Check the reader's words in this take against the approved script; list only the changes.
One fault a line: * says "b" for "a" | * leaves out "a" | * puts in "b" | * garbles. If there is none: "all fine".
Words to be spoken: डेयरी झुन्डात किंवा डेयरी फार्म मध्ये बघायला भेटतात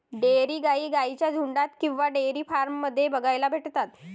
* puts in "गाई गाईंच्या"